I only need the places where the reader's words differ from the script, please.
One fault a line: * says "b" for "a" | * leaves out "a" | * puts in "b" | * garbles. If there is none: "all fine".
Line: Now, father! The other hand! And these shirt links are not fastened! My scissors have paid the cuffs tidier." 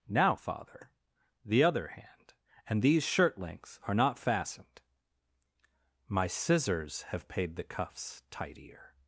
all fine